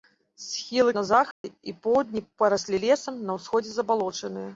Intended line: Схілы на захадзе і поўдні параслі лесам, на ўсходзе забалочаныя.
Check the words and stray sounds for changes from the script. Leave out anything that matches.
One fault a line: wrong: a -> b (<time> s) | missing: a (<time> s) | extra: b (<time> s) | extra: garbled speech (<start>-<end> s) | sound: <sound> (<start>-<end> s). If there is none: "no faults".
sound: dropout (1.3-1.4 s)